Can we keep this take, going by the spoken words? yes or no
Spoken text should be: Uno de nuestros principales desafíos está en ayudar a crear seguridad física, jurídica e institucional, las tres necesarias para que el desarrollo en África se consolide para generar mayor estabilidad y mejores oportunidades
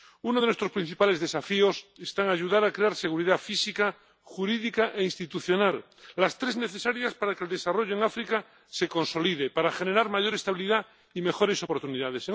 yes